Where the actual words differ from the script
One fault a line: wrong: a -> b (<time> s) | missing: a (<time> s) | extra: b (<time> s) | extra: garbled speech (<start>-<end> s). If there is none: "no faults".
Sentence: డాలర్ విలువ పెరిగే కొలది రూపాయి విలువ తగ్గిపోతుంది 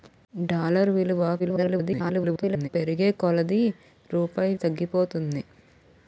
extra: garbled speech (1.4-2.7 s)
missing: విలువ (4.5 s)